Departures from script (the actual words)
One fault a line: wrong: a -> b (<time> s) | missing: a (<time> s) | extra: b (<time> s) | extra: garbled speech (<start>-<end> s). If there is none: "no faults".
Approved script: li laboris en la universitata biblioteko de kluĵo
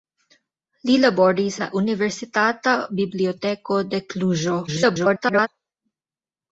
missing: en (1.6 s)
extra: garbled speech (4.7-5.5 s)